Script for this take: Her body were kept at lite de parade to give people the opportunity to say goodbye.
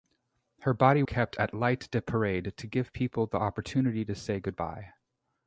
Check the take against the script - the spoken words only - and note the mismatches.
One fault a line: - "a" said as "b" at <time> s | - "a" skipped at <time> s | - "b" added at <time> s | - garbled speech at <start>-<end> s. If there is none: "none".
- "were" skipped at 1.0 s